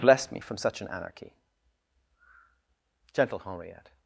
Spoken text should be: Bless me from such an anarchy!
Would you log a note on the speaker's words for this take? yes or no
yes